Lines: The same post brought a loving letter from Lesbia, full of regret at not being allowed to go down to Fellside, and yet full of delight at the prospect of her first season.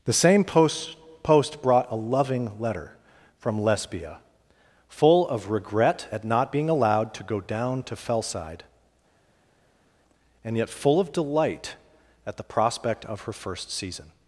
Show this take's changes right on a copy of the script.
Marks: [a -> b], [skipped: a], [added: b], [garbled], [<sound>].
The same post [added: post] brought a loving letter from Lesbia, full of regret at not being allowed to go down to Fellside, and yet full of delight at the prospect of her first season.